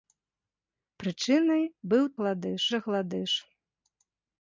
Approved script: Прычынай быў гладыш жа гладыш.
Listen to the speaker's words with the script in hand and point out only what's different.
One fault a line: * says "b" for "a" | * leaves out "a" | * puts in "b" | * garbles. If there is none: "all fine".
all fine